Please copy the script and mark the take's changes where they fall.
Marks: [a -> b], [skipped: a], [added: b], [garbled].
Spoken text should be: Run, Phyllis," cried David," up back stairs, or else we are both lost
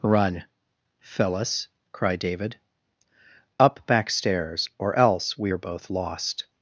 Run, Phyllis," cried David," up back stairs, or else we are both lost